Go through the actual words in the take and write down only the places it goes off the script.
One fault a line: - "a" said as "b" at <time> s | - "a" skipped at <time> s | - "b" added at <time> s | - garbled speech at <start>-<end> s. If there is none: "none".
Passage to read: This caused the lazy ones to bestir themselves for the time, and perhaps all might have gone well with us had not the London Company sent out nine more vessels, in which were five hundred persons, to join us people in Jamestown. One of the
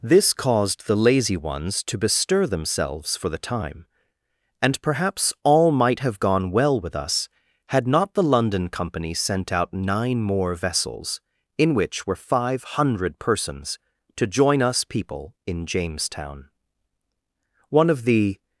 none